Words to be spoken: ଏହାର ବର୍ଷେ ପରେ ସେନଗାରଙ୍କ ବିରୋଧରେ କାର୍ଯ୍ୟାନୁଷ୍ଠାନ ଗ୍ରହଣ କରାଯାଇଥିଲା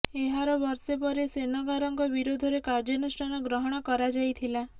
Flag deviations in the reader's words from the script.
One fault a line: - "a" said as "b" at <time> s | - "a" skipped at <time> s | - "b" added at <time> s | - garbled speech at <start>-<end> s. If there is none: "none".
none